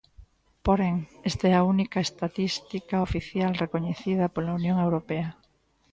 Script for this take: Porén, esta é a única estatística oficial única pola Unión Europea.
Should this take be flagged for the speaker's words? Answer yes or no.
yes